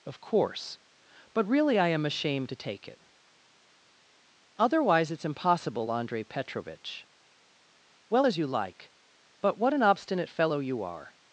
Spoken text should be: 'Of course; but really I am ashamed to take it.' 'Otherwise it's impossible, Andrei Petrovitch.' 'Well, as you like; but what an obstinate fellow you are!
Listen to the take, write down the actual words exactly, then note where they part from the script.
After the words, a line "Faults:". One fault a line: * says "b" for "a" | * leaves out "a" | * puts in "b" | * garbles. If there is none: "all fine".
'Of course; but really I am ashamed to take it.' 'Otherwise it's impossible, Andrei Petrovitch.' 'Well, as you like; but what an obstinate fellow you are!
Faults:
all fine